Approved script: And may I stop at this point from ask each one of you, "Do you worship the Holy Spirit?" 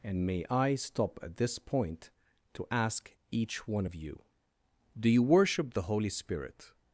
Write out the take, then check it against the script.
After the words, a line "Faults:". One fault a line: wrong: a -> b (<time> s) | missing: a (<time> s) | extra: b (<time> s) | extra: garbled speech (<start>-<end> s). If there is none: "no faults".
And may I stop at this point to ask each one of you, "Do you worship the Holy Spirit?"
Faults:
wrong: from -> to (2.5 s)